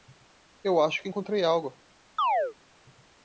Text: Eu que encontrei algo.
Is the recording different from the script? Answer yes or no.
yes